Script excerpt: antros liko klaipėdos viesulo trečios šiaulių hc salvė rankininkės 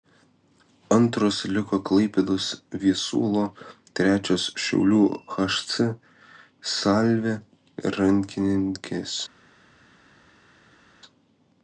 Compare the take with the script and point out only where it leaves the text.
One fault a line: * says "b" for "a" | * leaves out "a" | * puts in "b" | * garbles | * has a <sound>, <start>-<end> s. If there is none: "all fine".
all fine